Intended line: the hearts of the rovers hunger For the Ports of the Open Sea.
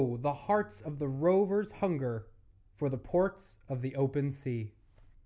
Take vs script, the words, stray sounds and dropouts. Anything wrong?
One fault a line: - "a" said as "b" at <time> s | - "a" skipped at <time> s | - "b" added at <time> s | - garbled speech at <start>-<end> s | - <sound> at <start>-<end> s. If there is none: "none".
none